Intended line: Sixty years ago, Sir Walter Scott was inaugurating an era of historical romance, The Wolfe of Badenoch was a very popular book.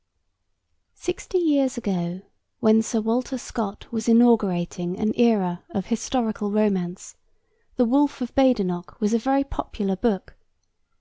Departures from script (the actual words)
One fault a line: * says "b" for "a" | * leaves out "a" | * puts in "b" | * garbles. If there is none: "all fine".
* puts in "when"